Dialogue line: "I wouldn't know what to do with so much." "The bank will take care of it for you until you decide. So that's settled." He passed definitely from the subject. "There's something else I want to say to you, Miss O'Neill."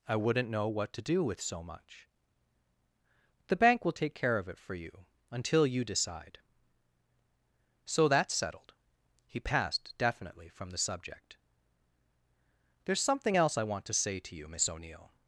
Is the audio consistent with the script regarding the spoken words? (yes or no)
yes